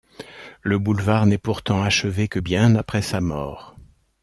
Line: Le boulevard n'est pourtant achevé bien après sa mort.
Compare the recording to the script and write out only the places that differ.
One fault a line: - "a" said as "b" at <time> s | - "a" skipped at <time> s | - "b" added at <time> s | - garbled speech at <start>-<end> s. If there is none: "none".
- "que" added at 2.2 s